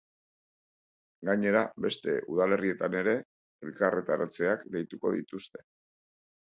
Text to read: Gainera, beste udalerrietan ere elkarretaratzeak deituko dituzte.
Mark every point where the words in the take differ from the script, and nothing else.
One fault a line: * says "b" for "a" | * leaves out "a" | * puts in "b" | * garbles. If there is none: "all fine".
all fine